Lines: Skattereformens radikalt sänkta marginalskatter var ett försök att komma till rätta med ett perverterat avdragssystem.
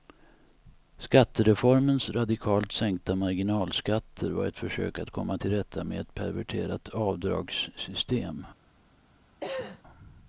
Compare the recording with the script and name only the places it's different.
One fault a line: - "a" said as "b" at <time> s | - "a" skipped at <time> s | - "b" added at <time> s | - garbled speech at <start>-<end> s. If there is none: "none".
none